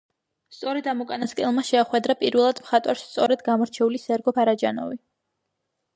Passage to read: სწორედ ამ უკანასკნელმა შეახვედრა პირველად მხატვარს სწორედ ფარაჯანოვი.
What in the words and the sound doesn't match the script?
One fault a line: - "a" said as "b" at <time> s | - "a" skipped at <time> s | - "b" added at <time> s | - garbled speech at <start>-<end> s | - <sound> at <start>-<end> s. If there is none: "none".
- "გამორჩეული სერგო" added at 3.5 s